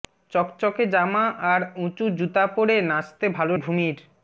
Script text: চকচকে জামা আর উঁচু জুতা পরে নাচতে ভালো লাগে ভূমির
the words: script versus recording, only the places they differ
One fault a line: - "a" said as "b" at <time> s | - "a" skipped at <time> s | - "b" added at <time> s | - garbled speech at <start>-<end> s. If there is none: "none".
- "লাগে" skipped at 3.5 s